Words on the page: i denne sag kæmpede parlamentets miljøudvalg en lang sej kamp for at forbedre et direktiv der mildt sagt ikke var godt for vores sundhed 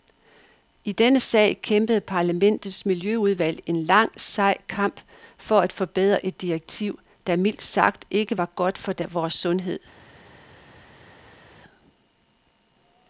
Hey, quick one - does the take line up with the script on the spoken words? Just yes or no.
yes